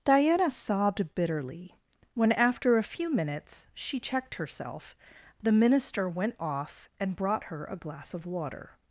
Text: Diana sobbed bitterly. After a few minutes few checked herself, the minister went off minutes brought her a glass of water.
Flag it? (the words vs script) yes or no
yes